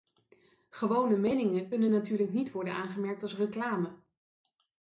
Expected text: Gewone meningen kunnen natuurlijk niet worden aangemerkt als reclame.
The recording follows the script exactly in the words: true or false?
true